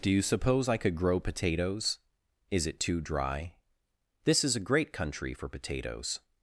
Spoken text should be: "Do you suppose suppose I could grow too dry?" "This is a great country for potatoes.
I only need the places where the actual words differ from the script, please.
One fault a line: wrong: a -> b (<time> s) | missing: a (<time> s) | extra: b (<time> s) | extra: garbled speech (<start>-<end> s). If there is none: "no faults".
missing: suppose (0.7 s)
extra: potatoes Is it (1.2 s)